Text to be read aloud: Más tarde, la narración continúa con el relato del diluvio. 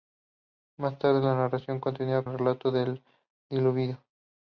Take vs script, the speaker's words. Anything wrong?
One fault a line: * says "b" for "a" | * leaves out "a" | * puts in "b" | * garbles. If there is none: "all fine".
* leaves out "con"